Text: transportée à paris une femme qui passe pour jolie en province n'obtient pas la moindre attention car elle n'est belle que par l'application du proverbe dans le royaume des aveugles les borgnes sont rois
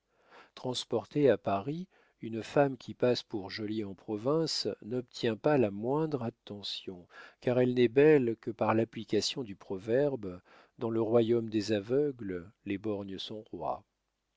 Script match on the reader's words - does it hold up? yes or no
yes